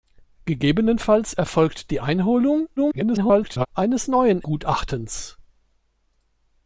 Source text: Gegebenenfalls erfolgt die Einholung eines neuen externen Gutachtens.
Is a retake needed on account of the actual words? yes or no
yes